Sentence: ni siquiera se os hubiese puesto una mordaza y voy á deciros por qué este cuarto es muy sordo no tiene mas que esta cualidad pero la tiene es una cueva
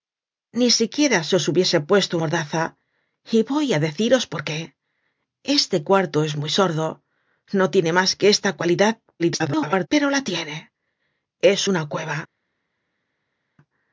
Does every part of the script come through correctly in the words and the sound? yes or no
no